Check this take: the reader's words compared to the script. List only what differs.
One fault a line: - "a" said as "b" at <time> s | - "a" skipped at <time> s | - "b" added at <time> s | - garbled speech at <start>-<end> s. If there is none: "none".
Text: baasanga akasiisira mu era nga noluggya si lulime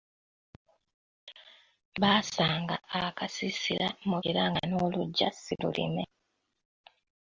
none